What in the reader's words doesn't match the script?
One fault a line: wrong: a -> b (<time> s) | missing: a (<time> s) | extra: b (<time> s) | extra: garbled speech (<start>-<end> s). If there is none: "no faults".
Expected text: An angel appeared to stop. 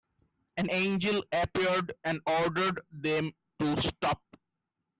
extra: and ordered them (2.0 s)